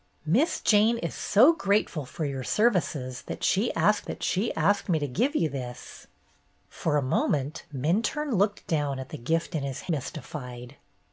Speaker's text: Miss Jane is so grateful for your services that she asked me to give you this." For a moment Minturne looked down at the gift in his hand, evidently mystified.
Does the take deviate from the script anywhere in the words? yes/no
yes